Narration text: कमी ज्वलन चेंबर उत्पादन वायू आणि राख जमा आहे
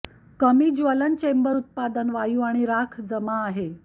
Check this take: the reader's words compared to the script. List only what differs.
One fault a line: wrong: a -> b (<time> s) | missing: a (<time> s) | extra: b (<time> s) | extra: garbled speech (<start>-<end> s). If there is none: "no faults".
no faults